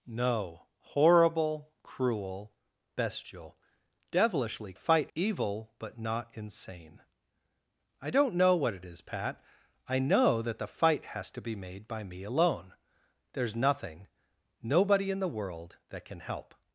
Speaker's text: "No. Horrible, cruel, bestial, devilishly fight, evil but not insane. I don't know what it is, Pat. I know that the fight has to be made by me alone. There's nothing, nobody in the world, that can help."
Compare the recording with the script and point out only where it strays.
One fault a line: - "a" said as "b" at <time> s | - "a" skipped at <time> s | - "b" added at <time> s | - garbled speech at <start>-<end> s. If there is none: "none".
none